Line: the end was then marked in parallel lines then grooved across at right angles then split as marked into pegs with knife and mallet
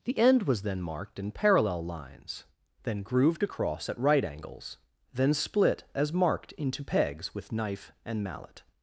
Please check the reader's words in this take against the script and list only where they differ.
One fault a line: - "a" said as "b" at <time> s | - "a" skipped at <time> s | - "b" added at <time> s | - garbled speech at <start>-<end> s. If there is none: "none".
none